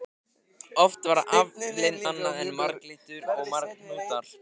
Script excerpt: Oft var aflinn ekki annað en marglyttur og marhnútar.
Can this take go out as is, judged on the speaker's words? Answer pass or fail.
fail